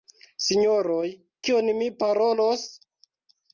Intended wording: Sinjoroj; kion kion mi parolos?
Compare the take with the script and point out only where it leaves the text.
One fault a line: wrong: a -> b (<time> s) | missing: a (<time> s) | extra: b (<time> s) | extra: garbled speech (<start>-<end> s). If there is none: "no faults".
missing: kion (1.7 s)